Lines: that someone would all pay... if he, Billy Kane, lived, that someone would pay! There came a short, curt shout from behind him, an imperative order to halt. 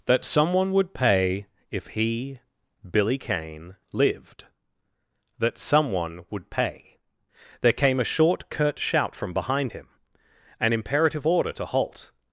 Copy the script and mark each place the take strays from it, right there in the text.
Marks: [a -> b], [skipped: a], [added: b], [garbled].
that someone would [skipped: all] pay... if he, Billy Kane, lived, that someone would pay! There came a short, curt shout from behind him, an imperative order to halt.